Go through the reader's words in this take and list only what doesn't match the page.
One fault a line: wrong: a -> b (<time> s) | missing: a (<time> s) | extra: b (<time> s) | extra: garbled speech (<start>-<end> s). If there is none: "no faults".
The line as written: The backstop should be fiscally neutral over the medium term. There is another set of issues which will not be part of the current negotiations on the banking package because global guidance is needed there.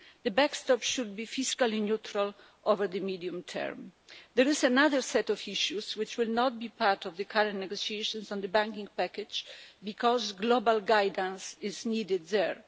no faults